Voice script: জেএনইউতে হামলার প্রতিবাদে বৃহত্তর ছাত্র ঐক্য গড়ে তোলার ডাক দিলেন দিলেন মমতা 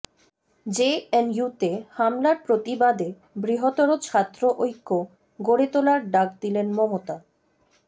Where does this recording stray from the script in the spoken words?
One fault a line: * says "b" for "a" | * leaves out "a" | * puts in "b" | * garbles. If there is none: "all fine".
* leaves out "দিলেন"